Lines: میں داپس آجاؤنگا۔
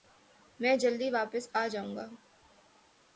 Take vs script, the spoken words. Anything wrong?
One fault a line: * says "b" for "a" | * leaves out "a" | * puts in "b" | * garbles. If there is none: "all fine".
* puts in "جلدی"